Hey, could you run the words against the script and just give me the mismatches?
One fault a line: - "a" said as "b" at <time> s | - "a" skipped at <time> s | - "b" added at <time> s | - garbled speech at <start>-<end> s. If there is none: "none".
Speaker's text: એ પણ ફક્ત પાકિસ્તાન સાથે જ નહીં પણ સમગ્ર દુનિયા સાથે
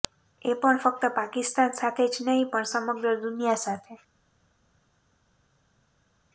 none